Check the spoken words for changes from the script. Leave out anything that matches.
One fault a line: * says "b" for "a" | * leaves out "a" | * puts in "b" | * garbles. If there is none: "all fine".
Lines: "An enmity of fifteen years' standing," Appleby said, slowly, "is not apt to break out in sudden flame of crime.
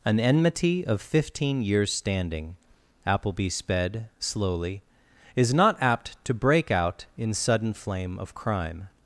* says "sped" for "said"